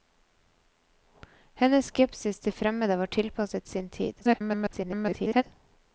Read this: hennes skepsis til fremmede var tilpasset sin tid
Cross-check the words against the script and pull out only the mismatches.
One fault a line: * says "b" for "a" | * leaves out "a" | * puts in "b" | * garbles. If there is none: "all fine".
* garbles